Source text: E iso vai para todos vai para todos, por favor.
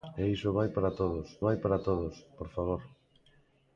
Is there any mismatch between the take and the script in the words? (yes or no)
no